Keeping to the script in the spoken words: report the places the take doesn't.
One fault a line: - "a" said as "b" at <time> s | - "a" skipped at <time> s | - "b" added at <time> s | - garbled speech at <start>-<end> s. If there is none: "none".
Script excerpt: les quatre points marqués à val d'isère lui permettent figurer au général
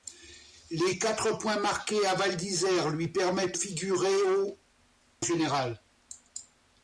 none